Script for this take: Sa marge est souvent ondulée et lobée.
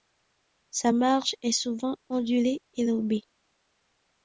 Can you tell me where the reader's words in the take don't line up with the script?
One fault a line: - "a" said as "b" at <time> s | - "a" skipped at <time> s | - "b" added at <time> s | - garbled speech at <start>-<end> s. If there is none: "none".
none